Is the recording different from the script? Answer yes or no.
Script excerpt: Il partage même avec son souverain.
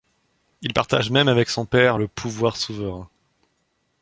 yes